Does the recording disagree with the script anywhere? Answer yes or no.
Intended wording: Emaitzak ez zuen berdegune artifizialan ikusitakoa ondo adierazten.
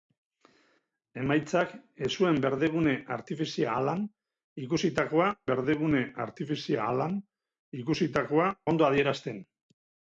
yes